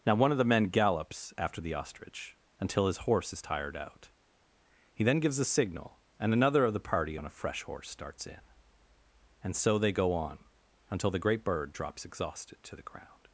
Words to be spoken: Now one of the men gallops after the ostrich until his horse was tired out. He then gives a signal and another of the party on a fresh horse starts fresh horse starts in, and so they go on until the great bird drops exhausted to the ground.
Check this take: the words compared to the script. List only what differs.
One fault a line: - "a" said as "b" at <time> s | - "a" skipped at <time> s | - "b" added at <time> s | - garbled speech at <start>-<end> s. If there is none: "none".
- "was" said as "is" at 3.3 s
- "fresh horse starts" skipped at 8.3 s